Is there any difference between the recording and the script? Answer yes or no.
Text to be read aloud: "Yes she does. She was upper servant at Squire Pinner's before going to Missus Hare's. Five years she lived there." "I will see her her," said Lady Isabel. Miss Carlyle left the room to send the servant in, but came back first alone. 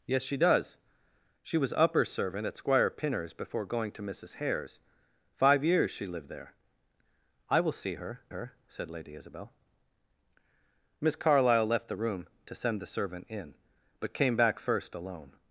no